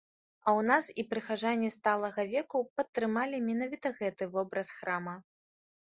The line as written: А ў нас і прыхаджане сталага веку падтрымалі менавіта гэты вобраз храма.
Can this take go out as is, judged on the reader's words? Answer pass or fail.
pass